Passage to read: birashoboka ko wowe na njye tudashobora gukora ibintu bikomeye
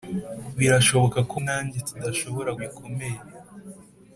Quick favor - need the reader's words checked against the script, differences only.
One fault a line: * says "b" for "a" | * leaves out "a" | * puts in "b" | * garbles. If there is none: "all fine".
* leaves out "wowe"
* leaves out "gukora ibintu"